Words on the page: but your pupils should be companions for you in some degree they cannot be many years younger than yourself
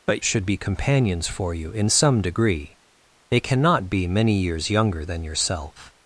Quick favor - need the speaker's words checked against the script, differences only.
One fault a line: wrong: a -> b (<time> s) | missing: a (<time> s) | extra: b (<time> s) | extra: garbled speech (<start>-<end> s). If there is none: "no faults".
missing: your pupils (0.2 s)